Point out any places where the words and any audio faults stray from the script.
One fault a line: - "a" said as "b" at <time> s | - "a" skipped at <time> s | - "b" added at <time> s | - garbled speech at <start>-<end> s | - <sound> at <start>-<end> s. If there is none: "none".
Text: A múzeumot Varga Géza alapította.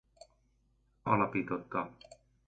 - "múzeumot Varga Géza" skipped at 1.1 s